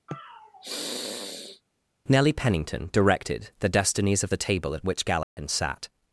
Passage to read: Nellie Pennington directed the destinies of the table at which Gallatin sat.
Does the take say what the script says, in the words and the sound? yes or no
no